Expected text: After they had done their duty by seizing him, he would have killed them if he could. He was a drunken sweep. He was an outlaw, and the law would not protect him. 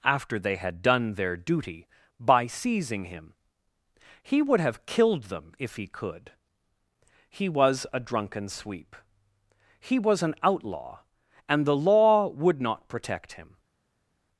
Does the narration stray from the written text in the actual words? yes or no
no